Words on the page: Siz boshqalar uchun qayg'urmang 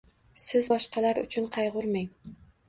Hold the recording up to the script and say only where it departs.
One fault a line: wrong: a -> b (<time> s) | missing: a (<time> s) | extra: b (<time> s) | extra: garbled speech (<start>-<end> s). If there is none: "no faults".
no faults